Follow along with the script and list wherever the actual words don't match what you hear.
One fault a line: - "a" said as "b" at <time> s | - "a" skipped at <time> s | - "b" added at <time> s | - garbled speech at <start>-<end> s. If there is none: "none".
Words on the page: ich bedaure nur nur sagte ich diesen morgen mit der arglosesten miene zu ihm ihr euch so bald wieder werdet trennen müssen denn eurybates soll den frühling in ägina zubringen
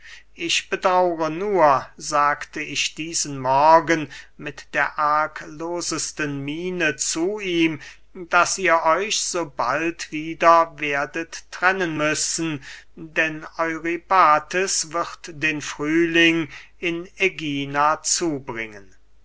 - "nur" skipped at 1.9 s
- "daß" added at 8.1 s
- "soll" said as "wird" at 14.9 s